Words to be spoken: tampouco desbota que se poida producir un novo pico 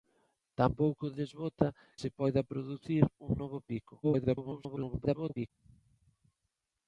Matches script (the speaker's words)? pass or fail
fail